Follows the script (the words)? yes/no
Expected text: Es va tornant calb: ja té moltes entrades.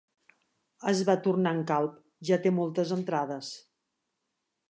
yes